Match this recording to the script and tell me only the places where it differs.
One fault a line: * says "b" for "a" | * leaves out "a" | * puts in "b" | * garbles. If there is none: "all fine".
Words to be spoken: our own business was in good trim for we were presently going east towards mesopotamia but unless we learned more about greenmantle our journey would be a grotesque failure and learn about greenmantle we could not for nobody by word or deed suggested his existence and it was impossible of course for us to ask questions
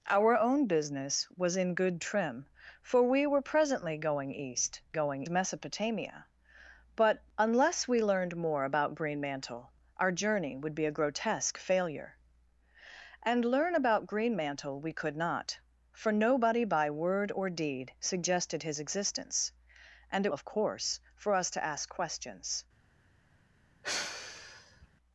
* says "going" for "towards"
* leaves out "was impossible"